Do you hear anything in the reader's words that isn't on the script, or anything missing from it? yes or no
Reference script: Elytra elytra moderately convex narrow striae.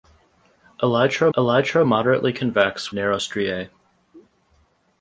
no